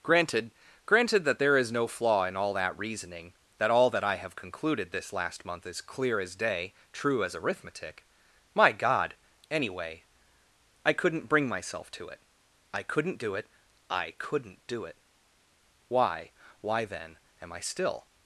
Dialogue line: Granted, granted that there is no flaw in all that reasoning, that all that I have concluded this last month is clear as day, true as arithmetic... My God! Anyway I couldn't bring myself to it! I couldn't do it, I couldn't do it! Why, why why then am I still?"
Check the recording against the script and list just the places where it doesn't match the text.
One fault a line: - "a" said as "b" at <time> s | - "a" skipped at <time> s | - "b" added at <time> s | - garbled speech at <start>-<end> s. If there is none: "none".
- "why" skipped at 16.8 s